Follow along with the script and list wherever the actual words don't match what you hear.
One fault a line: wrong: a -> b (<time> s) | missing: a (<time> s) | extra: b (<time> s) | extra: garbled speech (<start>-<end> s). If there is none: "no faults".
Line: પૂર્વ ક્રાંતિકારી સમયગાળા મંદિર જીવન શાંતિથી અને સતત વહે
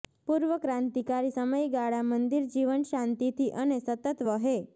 no faults